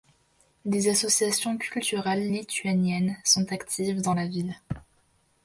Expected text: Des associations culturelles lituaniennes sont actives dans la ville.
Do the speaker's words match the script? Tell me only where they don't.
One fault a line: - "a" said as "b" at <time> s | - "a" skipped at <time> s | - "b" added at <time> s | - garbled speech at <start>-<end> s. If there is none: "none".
none